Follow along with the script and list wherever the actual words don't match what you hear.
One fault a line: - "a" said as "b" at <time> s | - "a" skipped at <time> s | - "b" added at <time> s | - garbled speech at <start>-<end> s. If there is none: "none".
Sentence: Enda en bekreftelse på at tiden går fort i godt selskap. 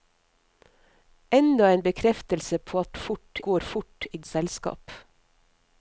- "tiden" said as "fort" at 2.9 s
- "godt" skipped at 4.2 s